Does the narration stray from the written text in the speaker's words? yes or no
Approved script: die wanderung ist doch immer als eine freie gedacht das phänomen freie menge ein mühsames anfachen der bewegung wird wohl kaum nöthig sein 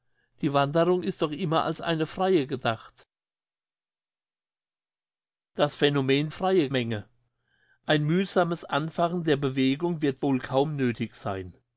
no